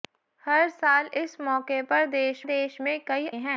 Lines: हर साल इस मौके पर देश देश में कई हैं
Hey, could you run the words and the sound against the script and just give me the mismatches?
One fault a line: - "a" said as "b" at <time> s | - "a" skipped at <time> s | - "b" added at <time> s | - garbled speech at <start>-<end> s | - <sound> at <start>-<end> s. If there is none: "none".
none